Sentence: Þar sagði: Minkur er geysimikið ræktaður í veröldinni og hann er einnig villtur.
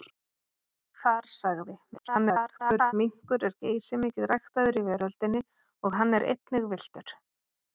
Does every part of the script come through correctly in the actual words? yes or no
no